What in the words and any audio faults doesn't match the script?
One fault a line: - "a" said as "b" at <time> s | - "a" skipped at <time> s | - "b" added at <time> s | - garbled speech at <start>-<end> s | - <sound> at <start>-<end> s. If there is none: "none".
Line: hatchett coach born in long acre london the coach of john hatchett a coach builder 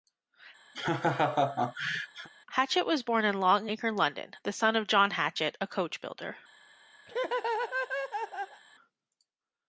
- laugh at 0.7-2.3 s
- "coach" said as "was" at 2.8 s
- "coach" said as "son" at 4.5 s
- laugh at 7.1-8.6 s